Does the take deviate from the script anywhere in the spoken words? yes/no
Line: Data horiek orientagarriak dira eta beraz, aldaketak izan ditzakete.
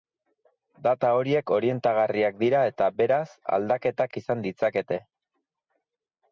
no